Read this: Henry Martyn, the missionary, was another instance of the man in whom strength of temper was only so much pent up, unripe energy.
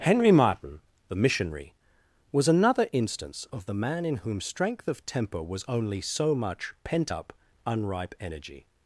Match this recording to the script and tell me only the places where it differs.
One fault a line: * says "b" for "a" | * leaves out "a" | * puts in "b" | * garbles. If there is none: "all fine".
all fine